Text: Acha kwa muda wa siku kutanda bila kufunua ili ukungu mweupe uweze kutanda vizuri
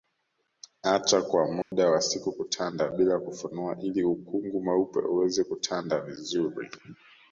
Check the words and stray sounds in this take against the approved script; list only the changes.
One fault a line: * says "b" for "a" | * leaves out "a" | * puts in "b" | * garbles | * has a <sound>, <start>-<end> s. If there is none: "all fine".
* has a dropout, 1.6-1.7 s